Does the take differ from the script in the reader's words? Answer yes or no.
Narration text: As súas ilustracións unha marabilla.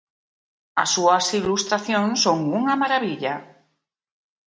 yes